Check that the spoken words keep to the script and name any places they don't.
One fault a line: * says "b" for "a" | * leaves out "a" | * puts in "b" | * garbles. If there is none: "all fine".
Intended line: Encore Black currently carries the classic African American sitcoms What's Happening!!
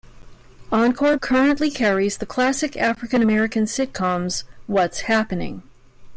* leaves out "Black"